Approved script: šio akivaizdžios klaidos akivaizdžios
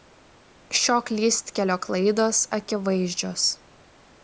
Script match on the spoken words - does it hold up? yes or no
no